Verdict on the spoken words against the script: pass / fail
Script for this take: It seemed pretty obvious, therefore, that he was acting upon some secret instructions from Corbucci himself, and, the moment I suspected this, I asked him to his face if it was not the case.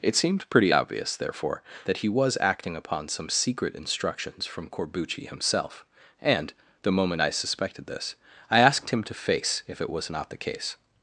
fail